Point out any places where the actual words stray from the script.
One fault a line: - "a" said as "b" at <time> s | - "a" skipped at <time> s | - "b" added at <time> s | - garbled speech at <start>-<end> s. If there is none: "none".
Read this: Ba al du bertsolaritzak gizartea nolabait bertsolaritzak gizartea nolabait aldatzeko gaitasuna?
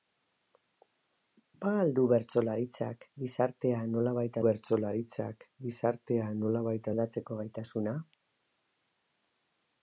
none